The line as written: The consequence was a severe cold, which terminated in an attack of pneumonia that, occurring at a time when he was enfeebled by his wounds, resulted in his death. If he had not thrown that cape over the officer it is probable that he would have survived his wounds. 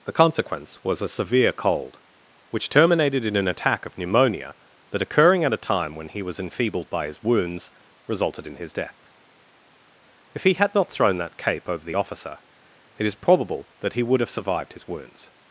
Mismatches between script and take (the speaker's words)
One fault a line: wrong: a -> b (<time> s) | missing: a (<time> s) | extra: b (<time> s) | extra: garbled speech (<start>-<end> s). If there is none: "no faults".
no faults